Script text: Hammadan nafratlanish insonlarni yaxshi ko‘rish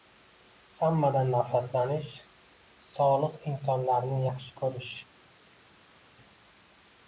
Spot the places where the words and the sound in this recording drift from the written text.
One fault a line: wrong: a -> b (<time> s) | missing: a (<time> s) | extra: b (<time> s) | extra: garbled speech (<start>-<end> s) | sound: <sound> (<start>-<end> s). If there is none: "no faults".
extra: solih (2.9 s)